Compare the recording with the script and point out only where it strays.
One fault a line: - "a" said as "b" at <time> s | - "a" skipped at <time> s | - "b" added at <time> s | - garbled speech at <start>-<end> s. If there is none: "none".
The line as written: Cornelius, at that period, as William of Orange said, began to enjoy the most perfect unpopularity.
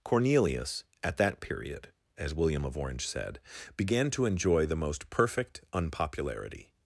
none